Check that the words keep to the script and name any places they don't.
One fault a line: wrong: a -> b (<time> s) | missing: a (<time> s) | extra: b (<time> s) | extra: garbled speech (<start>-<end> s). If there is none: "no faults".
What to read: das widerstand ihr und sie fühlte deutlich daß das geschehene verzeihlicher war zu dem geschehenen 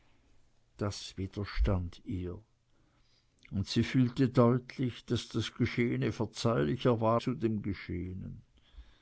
no faults